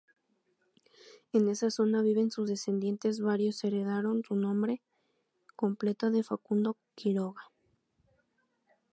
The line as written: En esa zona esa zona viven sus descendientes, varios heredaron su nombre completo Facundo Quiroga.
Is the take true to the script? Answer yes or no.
no